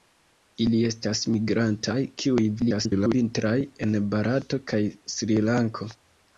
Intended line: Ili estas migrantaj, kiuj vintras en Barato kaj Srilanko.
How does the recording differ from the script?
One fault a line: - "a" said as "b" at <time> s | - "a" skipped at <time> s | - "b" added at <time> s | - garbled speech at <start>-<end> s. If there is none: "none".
- garbled speech at 2.6-3.1 s